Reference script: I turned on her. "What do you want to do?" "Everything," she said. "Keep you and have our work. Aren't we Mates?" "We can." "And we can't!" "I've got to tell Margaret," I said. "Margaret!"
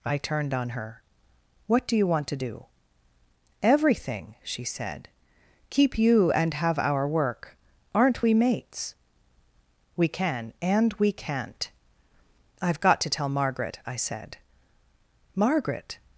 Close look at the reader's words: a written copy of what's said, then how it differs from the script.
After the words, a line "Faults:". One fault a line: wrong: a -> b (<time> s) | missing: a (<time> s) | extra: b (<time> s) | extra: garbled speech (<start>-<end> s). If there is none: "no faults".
I turned on her. "What do you want to do?" "Everything," she said. "Keep you and have our work. Aren't we Mates?" "We can." "And we can't!" "I've got to tell Margaret," I said. "Margaret!"
Faults:
no faults